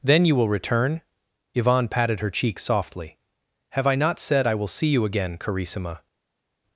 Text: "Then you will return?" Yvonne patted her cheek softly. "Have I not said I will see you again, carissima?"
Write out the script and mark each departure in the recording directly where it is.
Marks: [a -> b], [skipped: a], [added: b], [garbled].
"Then you will return?" Yvonne patted her cheek softly. "Have I not said I will see you again, carissima?"